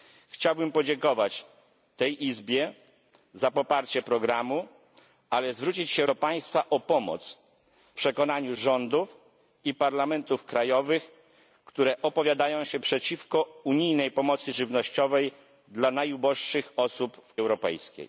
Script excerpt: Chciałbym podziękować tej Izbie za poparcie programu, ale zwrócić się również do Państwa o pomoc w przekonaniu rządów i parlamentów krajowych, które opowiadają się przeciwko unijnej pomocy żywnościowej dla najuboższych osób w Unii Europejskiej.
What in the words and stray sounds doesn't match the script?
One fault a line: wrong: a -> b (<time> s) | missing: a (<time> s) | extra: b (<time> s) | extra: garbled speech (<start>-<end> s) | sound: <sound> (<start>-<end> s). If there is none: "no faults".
missing: również (6.0 s)
missing: w (7.4 s)
missing: Unii (17.3 s)